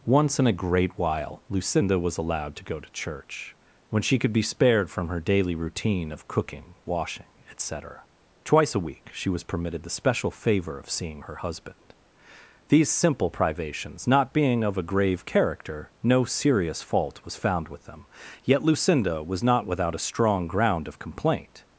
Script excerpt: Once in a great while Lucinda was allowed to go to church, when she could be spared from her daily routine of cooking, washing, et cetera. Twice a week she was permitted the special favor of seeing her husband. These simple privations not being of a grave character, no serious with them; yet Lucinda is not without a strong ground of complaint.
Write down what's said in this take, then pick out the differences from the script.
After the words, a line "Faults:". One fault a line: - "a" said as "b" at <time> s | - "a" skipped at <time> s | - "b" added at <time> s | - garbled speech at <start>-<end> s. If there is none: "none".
Once in a great while Lucinda was allowed to go to church, when she could be spared from her daily routine of cooking, washing, et cetera. Twice a week she was permitted the special favor of seeing her husband. These simple privations not being of a grave character, no serious fault was found with them; yet Lucinda was not without a strong ground of complaint.
Faults:
- "fault was found" added at 16.8 s
- "is" said as "was" at 19.2 s